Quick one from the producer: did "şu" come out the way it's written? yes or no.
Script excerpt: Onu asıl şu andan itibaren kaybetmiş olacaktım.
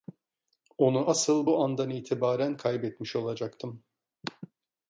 no